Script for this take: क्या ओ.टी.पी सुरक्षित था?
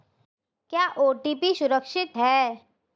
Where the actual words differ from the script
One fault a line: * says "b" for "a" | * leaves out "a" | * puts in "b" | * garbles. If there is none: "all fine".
* says "है" for "था"